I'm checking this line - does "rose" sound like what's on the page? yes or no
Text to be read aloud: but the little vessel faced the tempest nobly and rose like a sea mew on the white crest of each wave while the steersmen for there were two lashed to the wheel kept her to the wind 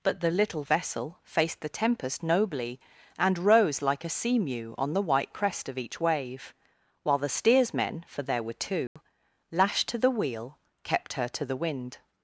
yes